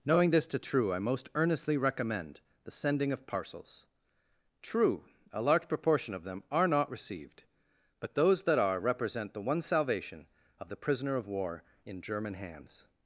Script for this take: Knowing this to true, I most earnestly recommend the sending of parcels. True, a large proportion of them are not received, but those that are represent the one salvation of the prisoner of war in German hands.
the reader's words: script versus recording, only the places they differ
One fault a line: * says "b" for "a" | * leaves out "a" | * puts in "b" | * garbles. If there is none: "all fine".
all fine